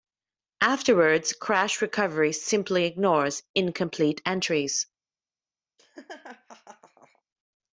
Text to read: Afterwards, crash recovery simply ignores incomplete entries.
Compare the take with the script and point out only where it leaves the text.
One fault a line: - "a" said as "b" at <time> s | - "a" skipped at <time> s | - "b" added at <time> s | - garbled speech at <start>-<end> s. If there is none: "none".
none